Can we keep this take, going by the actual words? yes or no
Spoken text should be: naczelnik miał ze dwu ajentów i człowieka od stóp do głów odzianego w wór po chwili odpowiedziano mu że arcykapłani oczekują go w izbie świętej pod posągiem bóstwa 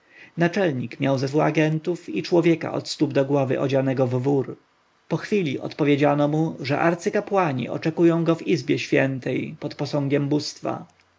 yes